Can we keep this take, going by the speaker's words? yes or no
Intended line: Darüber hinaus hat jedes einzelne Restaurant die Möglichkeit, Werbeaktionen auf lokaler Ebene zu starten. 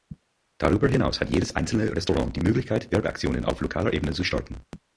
yes